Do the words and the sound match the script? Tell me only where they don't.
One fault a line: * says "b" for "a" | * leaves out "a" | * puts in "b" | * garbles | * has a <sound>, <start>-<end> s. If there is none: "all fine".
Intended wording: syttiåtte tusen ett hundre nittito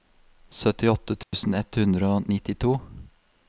* has a dropout, 1.2-1.3 s
* puts in "og"